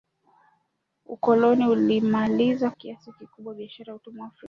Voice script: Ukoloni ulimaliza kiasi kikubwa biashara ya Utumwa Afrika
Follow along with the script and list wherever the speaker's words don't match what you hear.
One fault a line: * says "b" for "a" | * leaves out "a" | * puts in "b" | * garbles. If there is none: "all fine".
all fine